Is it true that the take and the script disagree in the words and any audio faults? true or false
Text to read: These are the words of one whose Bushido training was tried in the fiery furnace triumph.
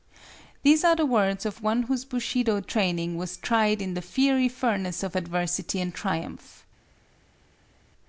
true